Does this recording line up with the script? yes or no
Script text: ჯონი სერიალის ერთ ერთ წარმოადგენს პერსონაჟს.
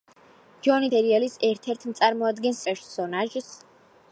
yes